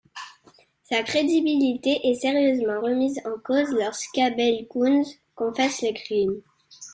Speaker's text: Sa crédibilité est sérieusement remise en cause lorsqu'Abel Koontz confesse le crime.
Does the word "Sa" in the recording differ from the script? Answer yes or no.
no